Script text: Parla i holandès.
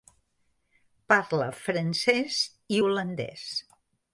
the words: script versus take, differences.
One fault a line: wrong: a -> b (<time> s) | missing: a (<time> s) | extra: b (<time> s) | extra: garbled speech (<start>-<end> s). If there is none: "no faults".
extra: francès (1.6 s)